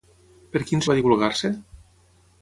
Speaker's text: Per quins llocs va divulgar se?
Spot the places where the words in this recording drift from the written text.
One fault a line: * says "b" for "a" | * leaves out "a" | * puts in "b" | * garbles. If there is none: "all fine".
* leaves out "llocs"